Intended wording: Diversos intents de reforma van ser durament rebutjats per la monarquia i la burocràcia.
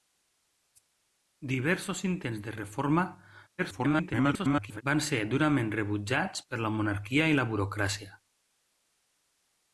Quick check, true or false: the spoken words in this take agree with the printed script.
false